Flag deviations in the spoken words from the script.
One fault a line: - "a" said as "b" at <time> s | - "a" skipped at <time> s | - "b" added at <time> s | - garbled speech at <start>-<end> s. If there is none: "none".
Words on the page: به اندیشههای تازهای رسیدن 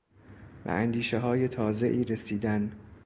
none